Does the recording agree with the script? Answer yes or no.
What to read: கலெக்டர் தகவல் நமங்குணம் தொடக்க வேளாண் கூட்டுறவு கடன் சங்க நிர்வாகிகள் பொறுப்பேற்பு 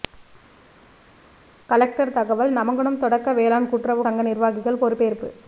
no